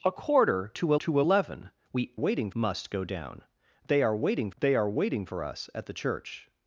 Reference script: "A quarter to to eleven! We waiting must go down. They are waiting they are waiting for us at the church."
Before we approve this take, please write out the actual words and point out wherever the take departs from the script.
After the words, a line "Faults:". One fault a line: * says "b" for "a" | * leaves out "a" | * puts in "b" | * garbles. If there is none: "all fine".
"A quarter to to eleven! We waiting must go down. They are waiting they are waiting for us at the church."
Faults:
all fine